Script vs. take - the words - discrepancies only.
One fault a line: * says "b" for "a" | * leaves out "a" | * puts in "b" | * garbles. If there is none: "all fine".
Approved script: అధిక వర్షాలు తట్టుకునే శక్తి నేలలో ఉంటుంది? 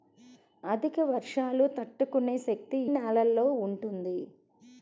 all fine